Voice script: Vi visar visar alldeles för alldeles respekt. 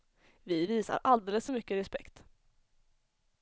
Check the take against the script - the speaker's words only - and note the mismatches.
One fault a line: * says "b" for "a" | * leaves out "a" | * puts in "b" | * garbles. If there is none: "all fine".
* leaves out "visar"
* says "mycket" for "alldeles"